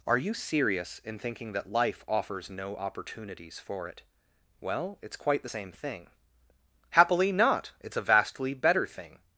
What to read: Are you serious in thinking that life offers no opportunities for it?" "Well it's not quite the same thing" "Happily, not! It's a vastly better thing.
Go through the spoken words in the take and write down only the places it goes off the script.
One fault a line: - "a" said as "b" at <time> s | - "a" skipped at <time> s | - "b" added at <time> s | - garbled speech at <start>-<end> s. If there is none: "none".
- "not" skipped at 5.2 s